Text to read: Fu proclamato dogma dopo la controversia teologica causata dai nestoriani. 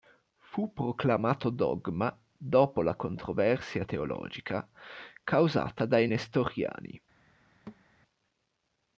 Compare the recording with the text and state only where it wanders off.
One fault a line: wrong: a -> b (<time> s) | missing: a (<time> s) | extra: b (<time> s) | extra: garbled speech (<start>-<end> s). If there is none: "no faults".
no faults